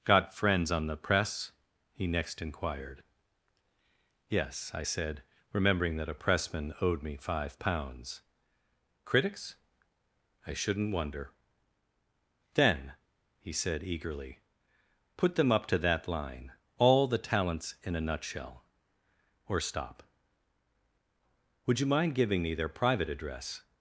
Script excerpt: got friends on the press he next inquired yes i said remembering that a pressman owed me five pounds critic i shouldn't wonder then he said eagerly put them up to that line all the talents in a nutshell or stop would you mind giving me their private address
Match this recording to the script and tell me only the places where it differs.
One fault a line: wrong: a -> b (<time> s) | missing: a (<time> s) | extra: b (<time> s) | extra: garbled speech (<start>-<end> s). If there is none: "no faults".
wrong: critic -> critics (9.0 s)